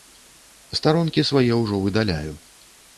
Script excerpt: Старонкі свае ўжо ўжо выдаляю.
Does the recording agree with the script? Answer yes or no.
no